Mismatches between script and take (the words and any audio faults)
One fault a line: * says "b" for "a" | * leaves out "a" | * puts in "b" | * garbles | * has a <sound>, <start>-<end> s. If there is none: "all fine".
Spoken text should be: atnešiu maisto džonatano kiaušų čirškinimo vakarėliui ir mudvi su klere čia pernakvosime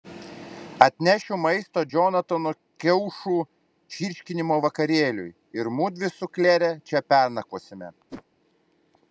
* has a whoosh, 8.1-8.2 s